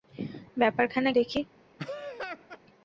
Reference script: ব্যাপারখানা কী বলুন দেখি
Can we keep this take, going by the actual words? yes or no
no